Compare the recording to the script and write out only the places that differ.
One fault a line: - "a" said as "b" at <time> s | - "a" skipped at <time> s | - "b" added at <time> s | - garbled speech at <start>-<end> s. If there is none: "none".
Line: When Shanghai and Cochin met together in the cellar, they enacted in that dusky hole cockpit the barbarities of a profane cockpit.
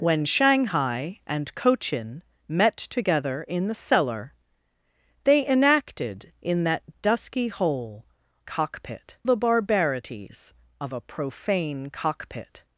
none